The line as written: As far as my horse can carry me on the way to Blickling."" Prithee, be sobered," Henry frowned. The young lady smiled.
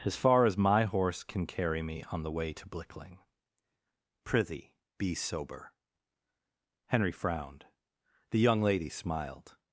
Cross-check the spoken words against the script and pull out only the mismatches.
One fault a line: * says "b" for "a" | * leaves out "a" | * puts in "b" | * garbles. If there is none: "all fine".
* says "sober" for "sobered"